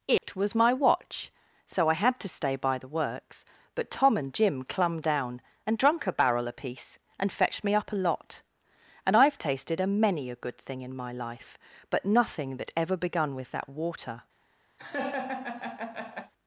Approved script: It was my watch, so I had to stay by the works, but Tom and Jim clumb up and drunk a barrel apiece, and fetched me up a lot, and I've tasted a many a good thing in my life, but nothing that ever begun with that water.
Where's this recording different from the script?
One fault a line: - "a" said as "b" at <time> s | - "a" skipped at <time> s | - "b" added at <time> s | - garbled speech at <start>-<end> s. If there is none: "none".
- "up" said as "down" at 5.0 s